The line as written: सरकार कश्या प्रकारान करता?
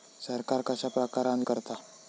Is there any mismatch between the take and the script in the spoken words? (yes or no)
no